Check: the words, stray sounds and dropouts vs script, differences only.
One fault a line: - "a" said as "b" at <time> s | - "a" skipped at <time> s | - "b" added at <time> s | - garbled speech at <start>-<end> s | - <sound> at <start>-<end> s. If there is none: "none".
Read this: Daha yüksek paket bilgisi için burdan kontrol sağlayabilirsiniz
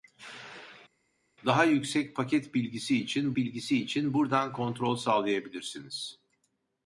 - "bilgisi için" added at 3.4 s